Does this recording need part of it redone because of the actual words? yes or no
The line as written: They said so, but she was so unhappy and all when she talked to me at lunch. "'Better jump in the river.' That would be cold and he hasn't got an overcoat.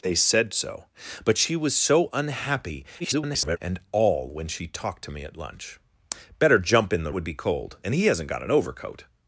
yes